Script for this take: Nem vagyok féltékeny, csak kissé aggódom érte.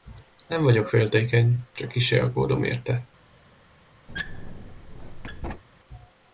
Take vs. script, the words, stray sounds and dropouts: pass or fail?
fail